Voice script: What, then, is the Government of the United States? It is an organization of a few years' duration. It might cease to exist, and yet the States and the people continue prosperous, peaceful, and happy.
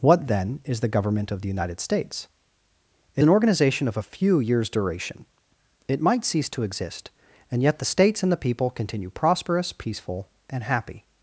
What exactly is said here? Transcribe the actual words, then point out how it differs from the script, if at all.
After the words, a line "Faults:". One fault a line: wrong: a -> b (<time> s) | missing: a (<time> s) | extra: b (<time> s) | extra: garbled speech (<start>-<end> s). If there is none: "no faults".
What, then, is the Government of the United States? It an organization of a few years' duration. It might cease to exist, and yet the States and the people continue prosperous, peaceful, and happy.
Faults:
missing: is (3.2 s)